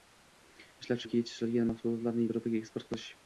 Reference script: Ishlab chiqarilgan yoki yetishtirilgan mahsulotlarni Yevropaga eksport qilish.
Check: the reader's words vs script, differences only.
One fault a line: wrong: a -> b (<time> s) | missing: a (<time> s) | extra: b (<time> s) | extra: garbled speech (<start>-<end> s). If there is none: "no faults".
missing: chiqarilgan (1.0 s)